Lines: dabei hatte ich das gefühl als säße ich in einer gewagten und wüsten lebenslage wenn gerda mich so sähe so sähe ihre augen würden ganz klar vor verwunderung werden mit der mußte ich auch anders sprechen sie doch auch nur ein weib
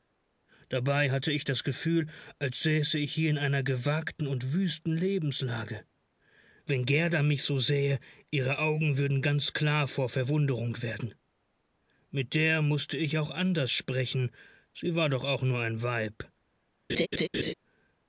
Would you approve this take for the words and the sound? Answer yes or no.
no